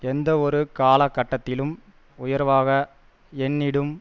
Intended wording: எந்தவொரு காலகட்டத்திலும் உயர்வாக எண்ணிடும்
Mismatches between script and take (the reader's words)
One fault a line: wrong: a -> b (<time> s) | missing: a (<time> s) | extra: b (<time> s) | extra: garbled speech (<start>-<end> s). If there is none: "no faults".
no faults